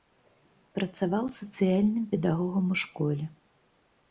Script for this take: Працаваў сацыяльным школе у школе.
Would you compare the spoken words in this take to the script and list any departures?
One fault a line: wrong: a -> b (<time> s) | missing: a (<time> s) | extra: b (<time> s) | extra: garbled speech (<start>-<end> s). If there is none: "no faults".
wrong: школе -> педагогам (2.1 s)